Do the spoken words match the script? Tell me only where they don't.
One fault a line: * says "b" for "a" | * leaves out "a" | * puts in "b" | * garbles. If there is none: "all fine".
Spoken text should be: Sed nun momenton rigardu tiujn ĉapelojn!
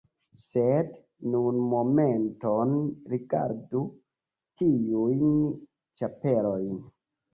all fine